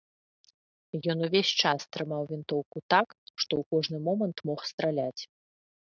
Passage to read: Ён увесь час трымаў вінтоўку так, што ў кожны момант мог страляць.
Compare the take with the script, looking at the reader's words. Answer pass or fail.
pass